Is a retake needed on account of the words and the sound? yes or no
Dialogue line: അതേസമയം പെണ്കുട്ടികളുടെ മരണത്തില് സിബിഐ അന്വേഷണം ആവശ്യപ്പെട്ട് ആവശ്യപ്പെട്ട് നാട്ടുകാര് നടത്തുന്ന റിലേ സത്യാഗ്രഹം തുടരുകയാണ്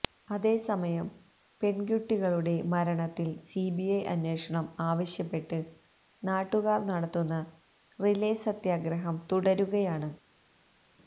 yes